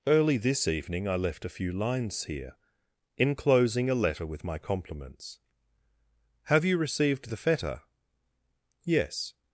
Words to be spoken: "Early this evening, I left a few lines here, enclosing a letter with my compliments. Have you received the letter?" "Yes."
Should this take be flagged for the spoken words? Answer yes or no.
yes